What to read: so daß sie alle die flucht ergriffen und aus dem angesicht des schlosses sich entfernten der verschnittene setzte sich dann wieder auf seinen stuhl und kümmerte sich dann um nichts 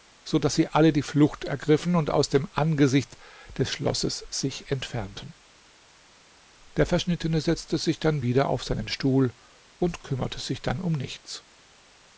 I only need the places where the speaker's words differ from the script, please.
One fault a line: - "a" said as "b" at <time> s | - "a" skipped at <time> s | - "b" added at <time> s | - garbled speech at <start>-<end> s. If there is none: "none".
none